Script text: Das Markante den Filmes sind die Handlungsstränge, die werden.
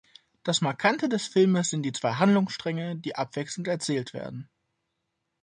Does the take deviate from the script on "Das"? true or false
false